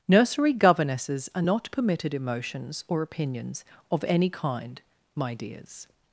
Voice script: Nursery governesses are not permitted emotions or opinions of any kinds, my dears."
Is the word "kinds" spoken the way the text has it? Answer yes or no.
no